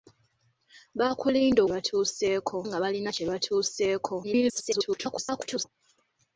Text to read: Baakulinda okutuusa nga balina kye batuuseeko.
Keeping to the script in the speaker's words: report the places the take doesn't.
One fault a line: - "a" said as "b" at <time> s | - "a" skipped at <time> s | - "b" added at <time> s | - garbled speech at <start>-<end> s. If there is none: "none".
- "okutuusa" said as "batuuseeko" at 1.7 s
- garbled speech at 4.2-5.7 s